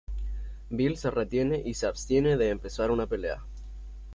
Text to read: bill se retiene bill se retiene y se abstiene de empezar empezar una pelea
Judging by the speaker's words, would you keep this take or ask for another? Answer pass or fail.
fail